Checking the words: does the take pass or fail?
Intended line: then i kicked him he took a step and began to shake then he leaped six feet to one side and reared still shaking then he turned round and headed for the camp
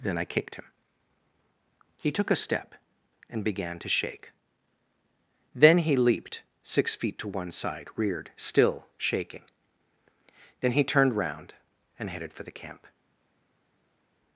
fail